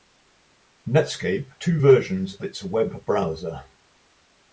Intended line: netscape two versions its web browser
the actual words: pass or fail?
pass